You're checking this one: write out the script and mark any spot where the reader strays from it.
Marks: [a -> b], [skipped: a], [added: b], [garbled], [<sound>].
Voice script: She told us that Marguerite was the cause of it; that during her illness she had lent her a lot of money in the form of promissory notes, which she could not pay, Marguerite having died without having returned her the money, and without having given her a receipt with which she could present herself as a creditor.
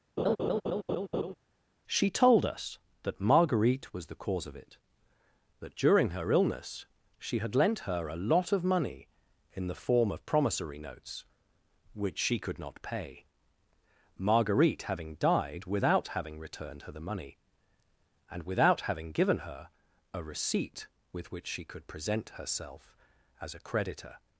[laugh] She told us that Marguerite was the cause of it; that during her illness she had lent her a lot of money in the form of promissory notes, which she could not pay, Marguerite having died without having returned her the money, and without having given her a receipt with which she could present herself as a creditor.